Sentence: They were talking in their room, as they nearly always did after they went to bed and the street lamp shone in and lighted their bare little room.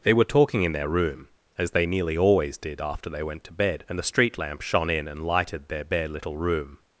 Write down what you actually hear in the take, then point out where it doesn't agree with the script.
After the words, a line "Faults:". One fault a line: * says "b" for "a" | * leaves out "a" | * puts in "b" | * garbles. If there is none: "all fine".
They were talking in their room, as they nearly always did after they went to bed and the street lamp shone in and lighted their bare little room.
Faults:
all fine